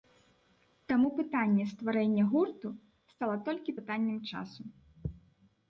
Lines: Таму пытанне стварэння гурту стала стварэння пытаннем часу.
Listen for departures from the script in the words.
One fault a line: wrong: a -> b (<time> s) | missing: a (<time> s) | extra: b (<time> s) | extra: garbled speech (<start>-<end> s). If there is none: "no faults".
wrong: стварэння -> толькі (3.5 s)